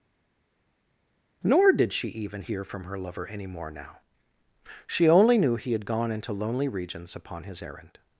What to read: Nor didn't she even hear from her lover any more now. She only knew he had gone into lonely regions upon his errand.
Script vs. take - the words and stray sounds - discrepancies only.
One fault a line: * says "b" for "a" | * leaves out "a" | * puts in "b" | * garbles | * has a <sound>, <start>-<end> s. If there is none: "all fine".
* says "did" for "didn't"